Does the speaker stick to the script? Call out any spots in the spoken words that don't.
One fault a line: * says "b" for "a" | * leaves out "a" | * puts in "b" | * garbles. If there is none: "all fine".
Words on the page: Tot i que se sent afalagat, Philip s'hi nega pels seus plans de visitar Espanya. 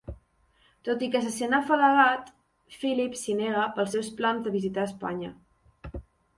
all fine